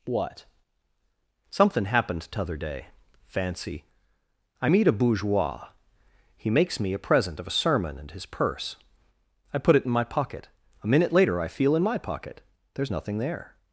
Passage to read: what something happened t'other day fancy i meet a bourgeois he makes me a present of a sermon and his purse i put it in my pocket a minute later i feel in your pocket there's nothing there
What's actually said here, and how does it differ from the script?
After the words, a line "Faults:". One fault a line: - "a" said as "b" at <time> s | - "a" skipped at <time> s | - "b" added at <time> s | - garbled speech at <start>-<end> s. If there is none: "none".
what something happened t'other day fancy i meet a bourgeois he makes me a present of a sermon and his purse i put it in my pocket a minute later i feel in my pocket there's nothing there
Faults:
- "your" said as "my" at 11.8 s